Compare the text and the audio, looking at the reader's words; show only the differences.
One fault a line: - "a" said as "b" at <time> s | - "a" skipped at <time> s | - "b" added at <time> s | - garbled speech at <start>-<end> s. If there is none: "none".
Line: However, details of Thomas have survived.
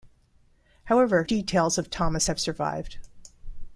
none